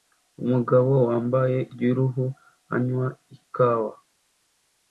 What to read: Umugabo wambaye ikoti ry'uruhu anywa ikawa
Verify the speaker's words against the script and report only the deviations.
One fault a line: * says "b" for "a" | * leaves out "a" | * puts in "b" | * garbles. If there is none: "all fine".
* leaves out "ikoti"